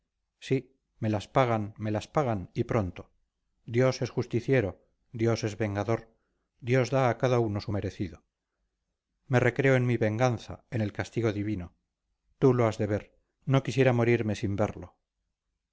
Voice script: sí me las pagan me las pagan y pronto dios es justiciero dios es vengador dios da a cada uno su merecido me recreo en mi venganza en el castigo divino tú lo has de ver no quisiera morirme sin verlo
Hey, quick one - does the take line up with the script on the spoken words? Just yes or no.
yes